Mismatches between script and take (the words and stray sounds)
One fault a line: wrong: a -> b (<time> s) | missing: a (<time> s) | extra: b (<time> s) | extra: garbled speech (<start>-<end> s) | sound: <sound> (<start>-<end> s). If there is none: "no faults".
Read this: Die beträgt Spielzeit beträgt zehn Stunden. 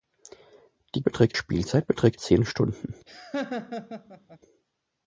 sound: laugh (3.1-4.4 s)